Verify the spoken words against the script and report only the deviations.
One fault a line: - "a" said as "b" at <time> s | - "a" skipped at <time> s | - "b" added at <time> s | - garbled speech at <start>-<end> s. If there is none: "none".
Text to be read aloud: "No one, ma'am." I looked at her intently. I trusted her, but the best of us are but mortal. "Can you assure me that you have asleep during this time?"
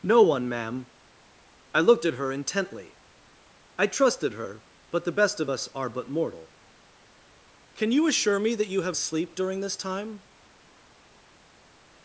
none